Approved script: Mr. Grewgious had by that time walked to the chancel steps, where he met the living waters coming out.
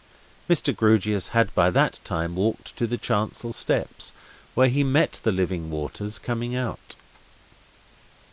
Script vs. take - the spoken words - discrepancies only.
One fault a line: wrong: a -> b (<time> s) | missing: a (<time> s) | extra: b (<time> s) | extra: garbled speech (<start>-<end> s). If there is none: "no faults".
no faults